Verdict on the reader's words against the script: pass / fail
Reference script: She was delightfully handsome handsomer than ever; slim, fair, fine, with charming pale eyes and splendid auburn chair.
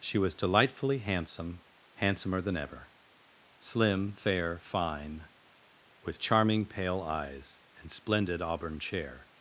pass